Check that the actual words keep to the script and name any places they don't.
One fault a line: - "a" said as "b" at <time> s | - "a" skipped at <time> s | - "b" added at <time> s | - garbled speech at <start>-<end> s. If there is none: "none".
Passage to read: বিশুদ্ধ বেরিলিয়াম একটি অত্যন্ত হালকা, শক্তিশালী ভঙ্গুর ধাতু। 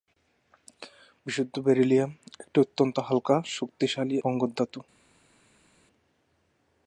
none